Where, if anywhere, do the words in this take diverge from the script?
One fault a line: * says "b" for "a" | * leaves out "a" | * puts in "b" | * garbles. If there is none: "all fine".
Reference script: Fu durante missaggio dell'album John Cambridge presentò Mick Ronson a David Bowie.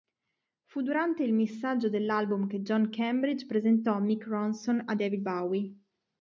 * puts in "il"
* puts in "che"